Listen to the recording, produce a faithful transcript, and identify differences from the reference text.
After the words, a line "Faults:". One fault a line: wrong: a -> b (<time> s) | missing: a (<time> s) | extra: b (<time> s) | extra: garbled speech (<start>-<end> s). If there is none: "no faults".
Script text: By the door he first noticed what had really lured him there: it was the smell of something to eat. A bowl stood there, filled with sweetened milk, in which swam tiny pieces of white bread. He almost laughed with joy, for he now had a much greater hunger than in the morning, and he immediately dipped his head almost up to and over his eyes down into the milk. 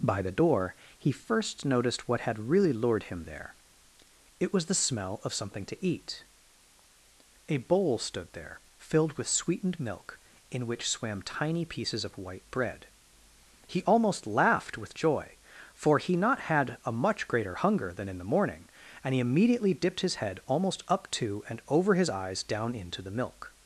By the door he first noticed what had really lured him there: it was the smell of something to eat. A bowl stood there, filled with sweetened milk, in which swam tiny pieces of white bread. He almost laughed with joy, for he not had a much greater hunger than in the morning, and he immediately dipped his head almost up to and over his eyes down into the milk.
Faults:
wrong: now -> not (16.1 s)